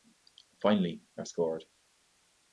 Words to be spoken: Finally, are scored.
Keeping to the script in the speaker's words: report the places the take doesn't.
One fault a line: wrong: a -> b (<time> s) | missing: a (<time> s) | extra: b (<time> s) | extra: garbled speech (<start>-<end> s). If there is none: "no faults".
no faults